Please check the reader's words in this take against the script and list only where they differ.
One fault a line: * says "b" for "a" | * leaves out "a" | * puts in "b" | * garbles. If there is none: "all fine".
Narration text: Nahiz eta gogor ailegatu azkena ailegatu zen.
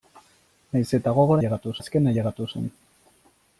all fine